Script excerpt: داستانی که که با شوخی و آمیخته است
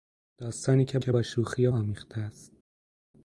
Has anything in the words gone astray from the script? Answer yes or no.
no